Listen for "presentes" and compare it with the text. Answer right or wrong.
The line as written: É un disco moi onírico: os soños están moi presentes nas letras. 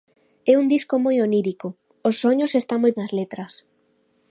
wrong